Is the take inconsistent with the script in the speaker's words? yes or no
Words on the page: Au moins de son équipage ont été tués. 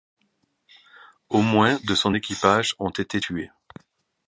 no